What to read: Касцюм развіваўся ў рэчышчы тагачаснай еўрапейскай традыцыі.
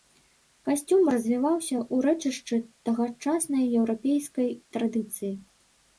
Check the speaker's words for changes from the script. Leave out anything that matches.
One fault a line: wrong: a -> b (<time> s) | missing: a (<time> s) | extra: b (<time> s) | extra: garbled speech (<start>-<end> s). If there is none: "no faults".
no faults